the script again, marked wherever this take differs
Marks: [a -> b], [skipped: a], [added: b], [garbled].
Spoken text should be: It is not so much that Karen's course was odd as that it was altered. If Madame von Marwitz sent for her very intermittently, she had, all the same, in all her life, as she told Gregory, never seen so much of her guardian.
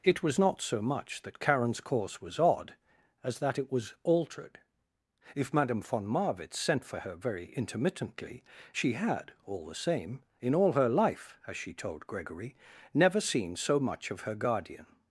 It [is -> was] not so much that Karen's course was odd as that it was altered. If Madame von Marwitz sent for her very intermittently, she had, all the same, in all her life, as she told Gregory, never seen so much of her guardian.